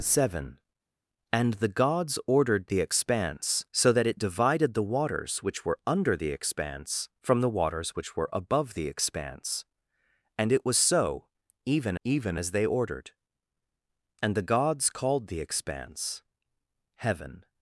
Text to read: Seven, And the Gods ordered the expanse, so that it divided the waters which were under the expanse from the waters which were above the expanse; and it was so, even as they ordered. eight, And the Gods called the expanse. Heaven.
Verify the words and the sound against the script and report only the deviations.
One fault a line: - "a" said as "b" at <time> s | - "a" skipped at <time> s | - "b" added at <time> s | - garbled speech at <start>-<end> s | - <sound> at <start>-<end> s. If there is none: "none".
- "even" added at 12.0 s
- "eight" skipped at 13.1 s